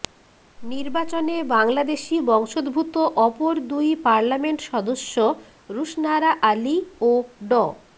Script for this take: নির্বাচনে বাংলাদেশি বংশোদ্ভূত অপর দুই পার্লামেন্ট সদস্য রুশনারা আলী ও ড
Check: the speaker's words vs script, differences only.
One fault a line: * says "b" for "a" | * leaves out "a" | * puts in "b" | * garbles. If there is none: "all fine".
all fine